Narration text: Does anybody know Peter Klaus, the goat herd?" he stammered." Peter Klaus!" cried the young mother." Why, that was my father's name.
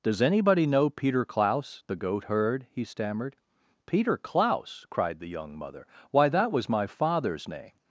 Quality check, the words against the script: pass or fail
pass